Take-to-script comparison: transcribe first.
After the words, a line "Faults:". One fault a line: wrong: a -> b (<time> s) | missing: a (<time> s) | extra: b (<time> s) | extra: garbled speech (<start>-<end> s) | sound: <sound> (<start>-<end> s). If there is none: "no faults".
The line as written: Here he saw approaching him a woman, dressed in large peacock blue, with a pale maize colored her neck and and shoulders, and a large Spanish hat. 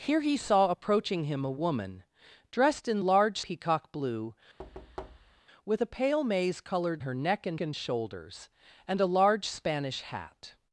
Here he saw approaching him a woman, dressed in large peacock blue, with a pale maize colored her neck and and shoulders, and a large Spanish hat.
Faults:
sound: thud (4.6-5.4 s)